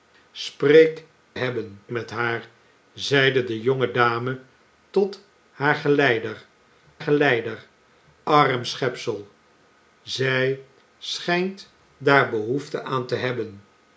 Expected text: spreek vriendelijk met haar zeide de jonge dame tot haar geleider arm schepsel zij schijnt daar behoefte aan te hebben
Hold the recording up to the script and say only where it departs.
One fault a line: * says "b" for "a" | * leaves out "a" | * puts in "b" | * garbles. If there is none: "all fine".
* says "hebben" for "vriendelijk"
* puts in "geleider"